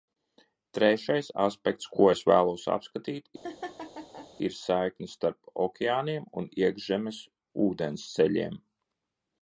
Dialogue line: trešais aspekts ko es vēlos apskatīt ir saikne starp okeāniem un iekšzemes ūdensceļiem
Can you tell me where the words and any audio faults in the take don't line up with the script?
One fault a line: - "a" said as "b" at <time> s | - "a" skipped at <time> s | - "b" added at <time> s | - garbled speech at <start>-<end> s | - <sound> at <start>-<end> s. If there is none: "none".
- laugh at 3.4-4.3 s